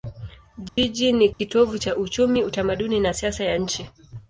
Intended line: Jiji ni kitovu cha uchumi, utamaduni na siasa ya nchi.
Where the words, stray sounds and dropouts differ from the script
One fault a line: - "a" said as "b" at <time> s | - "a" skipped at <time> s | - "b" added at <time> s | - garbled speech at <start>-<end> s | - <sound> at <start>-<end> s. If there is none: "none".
- dropout at 0.7-0.8 s
- dropout at 1.3-1.4 s